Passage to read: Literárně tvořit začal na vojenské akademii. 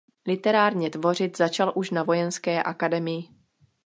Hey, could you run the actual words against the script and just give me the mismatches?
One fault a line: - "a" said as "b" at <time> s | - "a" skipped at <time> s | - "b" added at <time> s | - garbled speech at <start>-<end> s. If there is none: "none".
- "už" added at 1.7 s